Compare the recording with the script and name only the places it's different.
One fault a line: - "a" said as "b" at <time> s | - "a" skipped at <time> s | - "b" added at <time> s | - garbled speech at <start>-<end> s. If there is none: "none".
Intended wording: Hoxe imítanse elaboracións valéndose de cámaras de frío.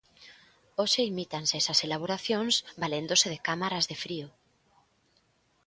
- "esas" added at 1.6 s